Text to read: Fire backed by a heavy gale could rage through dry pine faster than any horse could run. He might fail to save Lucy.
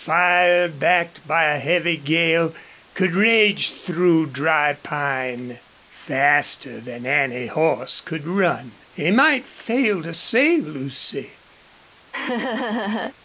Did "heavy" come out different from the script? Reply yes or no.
no